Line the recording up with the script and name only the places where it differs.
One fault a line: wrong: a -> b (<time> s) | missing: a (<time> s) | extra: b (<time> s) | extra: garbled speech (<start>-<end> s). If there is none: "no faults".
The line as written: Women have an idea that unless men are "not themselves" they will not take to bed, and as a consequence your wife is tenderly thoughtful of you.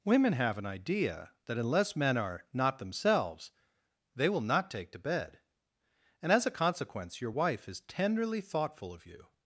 no faults